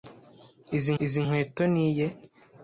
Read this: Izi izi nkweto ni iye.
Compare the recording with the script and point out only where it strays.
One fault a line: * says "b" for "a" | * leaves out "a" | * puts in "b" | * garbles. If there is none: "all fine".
all fine